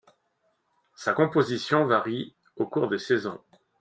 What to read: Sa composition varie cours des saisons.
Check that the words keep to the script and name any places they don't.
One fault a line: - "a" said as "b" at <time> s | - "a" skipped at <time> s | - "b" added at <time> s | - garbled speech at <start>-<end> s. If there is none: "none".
- "au" added at 2.5 s